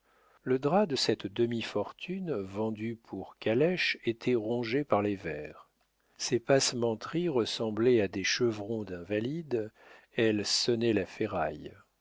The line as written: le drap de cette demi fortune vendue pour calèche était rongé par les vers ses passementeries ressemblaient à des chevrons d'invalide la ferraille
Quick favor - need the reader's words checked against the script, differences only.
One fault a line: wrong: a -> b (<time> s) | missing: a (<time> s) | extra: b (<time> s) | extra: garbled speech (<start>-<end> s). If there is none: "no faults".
extra: elle sonnait (10.1 s)